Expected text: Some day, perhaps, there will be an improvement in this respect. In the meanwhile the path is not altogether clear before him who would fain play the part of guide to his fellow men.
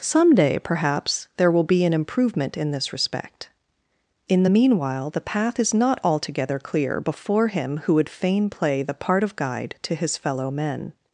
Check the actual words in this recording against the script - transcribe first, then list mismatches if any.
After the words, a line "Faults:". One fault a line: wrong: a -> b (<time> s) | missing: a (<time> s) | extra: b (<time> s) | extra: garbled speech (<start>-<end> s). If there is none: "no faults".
Some day, perhaps, there will be an improvement in this respect. In the meanwhile the path is not altogether clear before him who would fain play the part of guide to his fellow men.
Faults:
no faults